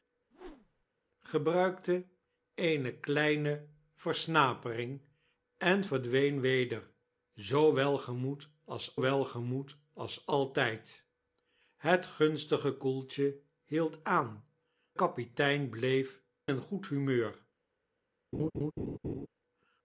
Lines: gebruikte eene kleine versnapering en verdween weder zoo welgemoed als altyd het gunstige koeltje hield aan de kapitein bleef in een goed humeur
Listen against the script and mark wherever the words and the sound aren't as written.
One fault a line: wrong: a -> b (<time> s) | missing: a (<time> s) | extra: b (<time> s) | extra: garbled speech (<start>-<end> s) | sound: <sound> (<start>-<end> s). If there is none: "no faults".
sound: whoosh (0.3-0.9 s)
extra: welgemoed als (9.0 s)
missing: de (14.4 s)
missing: in (16.2 s)
sound: laugh (18.3-19.3 s)